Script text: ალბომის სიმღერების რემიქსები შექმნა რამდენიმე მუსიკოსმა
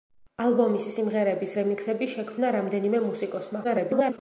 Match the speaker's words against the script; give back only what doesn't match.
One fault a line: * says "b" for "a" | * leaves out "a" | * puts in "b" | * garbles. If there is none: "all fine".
* garbles